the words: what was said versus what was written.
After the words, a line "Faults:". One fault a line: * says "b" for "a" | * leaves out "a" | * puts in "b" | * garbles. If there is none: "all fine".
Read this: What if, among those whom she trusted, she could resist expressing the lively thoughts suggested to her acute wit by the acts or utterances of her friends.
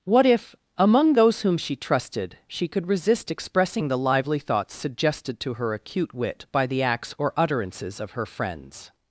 What if, among those whom she trusted, she could resist expressing the lively thoughts suggested to her acute wit by the acts or utterances of her friends.
Faults:
all fine